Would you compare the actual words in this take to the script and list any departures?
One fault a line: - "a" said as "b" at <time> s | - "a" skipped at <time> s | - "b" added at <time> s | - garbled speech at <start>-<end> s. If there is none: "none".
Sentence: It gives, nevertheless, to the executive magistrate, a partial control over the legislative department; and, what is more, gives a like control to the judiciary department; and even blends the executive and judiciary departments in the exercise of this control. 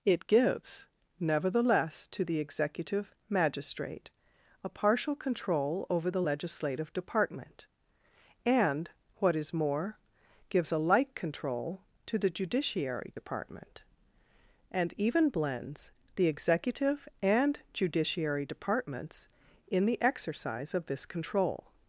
none